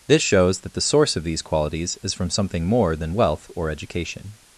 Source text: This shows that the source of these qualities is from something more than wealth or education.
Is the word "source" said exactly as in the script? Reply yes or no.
yes